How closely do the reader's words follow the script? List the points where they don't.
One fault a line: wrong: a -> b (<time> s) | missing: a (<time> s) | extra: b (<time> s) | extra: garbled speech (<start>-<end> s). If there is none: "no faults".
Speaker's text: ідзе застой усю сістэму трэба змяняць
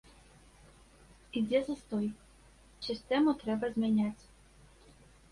missing: усю (2.1 s)